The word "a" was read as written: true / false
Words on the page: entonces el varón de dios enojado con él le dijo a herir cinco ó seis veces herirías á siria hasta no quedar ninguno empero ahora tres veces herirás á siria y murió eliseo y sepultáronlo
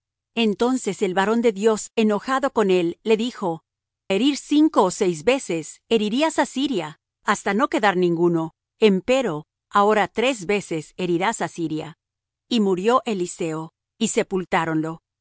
false